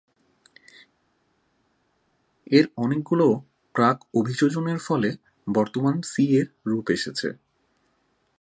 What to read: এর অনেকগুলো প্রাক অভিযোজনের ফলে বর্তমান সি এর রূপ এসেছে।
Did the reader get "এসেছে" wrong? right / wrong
right